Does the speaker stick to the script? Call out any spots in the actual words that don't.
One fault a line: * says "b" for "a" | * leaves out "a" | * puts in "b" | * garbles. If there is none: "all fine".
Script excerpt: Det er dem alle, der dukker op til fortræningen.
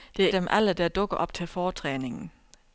all fine